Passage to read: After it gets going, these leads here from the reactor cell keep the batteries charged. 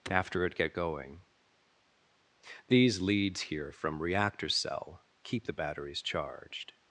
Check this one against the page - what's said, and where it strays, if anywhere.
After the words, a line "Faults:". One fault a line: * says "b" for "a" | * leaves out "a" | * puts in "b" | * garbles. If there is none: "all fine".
After it get going, these leads here from reactor cell keep the batteries charged.
Faults:
* says "get" for "gets"
* leaves out "the"